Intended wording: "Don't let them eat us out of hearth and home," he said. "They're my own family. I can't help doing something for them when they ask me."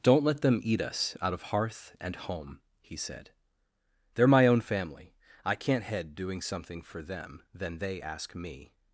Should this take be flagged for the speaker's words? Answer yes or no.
yes